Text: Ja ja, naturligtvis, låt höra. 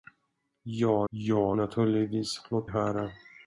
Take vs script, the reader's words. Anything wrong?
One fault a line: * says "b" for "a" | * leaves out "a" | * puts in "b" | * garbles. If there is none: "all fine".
all fine